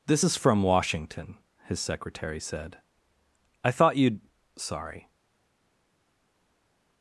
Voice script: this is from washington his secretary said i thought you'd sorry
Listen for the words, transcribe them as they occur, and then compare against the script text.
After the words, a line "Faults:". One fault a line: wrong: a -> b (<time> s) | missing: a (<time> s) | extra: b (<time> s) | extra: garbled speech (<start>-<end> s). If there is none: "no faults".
this is from washington his secretary said i thought you'd sorry
Faults:
no faults